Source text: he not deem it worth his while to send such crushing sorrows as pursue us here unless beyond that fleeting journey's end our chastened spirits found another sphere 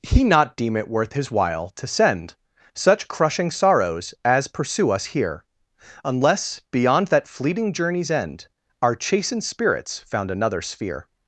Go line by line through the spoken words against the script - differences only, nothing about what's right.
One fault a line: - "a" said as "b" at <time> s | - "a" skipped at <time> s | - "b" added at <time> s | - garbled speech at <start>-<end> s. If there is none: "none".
none